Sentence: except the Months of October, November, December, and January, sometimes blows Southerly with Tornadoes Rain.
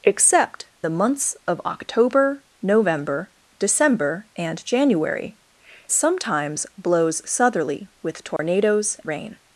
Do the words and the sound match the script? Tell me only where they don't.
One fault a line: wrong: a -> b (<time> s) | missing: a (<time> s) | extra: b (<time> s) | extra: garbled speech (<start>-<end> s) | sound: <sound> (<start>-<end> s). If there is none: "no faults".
sound: dropout (8.4-8.4 s)